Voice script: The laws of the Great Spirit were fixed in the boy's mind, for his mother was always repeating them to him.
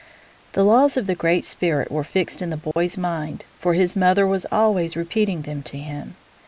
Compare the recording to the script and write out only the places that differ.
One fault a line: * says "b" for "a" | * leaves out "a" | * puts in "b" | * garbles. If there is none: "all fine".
all fine